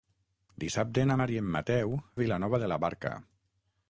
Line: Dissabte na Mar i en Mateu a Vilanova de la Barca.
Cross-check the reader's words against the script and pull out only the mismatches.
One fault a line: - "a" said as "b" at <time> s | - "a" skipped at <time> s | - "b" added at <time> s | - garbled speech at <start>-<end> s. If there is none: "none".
none